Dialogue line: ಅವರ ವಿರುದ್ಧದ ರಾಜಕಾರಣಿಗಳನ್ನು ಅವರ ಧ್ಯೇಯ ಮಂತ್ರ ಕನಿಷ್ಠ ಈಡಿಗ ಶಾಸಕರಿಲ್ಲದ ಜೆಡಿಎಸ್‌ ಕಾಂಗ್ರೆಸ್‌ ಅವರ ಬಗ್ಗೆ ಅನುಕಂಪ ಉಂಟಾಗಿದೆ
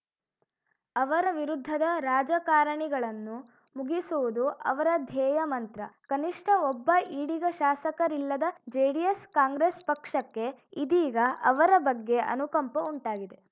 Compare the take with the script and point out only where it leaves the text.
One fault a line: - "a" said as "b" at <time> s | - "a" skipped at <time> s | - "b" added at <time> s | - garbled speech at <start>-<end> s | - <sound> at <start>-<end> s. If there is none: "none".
- "ಮುಗಿಸುವುದು" added at 3.7 s
- "ಒಬ್ಬ" added at 6.7 s
- "ಪಕ್ಷಕ್ಕೆ ಇದೀಗ" added at 9.8 s